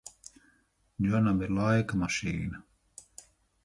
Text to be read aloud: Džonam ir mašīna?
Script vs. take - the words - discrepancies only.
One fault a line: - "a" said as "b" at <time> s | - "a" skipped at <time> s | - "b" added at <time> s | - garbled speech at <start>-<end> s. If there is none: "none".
- "laika" added at 1.6 s